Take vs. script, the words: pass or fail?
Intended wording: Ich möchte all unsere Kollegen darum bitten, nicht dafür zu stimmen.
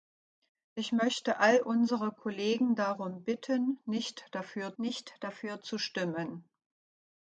fail